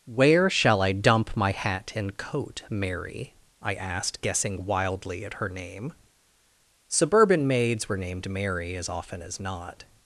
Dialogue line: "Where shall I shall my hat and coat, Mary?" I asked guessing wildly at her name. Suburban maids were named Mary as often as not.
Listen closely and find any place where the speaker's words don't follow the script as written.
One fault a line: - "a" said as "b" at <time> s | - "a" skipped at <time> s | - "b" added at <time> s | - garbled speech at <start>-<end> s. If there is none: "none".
- "shall" said as "dump" at 0.9 s